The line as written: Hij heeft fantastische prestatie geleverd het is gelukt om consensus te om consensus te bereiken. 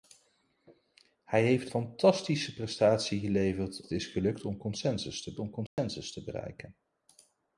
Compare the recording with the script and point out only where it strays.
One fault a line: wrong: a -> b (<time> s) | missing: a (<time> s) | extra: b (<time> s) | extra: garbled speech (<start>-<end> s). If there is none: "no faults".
no faults